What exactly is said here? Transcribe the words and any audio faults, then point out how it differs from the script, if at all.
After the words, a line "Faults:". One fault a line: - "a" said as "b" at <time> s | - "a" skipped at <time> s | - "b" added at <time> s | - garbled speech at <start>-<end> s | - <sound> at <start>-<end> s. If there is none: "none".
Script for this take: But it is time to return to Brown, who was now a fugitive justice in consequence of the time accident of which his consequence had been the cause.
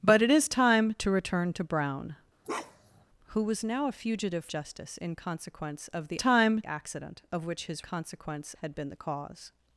But it is time to return to Brown, who was now a fugitive justice in consequence of the time accident of which his consequence had been the cause.
Faults:
- bark at 2.4-3.0 s